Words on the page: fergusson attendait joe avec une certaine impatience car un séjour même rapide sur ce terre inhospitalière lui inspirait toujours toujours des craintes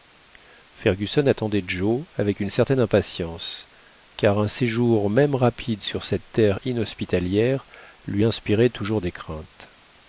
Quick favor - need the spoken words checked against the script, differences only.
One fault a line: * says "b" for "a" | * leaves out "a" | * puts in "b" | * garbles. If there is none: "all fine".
* says "cette" for "ce"
* leaves out "toujours"